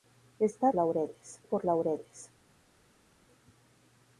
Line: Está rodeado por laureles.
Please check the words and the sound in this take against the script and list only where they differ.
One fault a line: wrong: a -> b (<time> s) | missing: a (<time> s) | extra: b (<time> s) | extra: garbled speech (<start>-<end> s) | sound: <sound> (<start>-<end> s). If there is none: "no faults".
wrong: rodeado -> laureles (0.7 s)